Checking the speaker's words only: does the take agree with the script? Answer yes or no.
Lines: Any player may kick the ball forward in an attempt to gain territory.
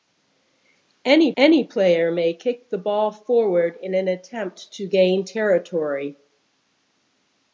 no